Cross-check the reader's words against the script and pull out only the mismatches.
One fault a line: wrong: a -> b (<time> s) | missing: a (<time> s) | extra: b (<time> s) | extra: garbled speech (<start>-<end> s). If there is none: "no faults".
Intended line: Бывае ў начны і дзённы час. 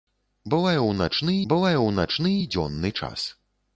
extra: бывае ў начны (1.5 s)